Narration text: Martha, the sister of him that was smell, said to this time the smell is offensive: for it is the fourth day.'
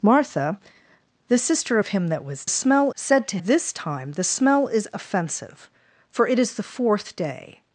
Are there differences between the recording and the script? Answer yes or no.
no